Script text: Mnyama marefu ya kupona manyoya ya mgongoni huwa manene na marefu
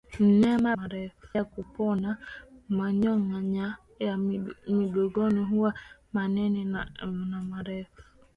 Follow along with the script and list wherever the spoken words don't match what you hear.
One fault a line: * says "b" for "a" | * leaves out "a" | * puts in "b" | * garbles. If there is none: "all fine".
all fine